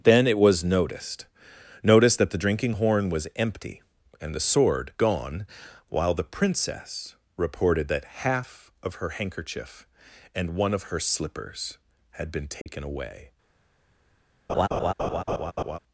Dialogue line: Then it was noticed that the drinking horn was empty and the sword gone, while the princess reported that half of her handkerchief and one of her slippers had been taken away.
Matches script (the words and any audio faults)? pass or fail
fail